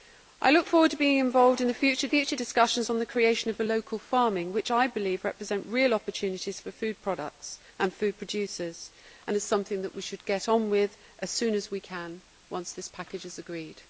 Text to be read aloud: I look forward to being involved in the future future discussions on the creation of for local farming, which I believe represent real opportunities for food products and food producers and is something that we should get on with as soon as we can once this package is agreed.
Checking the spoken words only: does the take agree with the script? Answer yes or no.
yes